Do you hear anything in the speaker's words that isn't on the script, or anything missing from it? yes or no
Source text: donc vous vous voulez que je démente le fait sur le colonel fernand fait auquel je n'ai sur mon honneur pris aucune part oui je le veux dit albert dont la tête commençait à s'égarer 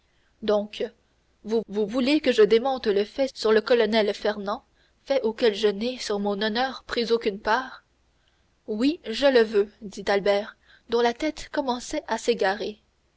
no